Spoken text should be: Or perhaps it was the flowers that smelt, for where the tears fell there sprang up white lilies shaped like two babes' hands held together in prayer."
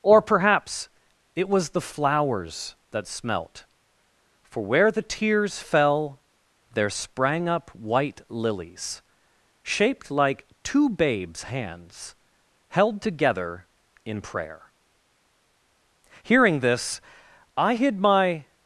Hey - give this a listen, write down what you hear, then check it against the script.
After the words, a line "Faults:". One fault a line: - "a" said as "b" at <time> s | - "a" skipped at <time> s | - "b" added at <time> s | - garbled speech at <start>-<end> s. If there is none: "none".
Or perhaps it was the flowers that smelt, for where the tears fell there sprang up white lilies shaped like two babes' hands held together in prayer." Hearing this, I hid my
Faults:
- "Hearing this I hid my" added at 16.2 s